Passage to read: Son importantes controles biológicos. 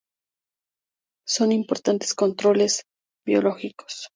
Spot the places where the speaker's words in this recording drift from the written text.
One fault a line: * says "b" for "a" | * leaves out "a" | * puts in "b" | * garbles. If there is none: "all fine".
all fine